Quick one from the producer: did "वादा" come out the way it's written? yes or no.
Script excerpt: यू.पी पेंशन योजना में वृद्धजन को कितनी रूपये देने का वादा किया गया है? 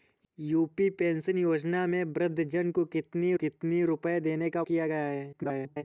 no